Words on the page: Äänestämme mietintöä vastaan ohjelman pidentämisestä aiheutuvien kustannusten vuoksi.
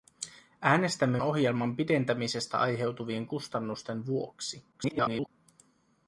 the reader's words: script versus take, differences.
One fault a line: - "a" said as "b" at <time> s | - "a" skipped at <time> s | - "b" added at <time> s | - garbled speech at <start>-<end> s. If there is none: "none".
- "mietintöä vastaan" skipped at 1.2 s
- garbled speech at 4.7-5.3 s